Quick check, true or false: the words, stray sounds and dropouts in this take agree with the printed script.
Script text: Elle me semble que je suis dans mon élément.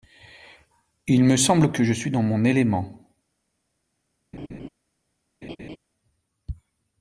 false